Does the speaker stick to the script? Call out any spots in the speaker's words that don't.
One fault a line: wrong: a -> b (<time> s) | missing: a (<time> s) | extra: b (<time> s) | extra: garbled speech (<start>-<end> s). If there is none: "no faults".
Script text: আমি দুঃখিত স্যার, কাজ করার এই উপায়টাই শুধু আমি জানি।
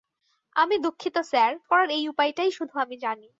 missing: কাজ (1.5 s)